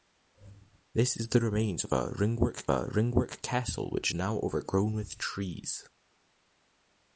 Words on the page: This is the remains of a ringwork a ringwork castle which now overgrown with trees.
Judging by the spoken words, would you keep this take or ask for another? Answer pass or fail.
pass